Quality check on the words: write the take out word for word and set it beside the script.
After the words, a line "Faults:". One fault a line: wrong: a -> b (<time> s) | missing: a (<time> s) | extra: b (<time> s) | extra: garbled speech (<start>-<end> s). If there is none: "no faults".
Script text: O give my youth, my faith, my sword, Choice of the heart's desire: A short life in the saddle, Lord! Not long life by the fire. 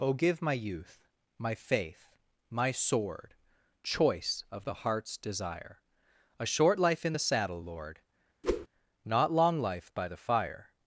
O give my youth, my faith, my sword, Choice of the heart's desire: A short life in the saddle, Lord! Not long life by the fire.
Faults:
no faults